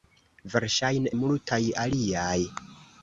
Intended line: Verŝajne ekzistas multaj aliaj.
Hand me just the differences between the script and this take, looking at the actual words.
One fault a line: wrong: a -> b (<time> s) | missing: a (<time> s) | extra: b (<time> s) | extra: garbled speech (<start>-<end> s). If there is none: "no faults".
missing: ekzistas (1.1 s)